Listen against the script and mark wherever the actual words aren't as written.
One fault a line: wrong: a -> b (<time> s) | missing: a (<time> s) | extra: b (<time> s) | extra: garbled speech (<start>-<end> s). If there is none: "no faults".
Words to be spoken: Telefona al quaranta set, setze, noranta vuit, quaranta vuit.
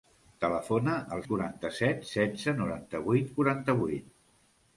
no faults